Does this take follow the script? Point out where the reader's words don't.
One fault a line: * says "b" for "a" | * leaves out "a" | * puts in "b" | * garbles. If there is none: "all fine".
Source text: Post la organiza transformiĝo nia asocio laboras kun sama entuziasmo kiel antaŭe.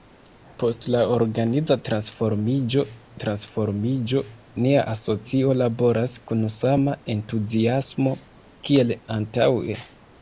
* puts in "transformiĝo"